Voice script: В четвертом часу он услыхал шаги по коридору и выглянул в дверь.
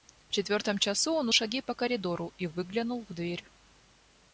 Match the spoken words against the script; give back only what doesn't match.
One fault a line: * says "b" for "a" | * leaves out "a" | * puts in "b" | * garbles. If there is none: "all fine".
* leaves out "услыхал"